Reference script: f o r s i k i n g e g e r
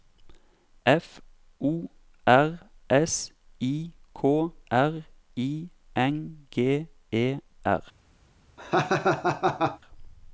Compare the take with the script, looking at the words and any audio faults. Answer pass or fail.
fail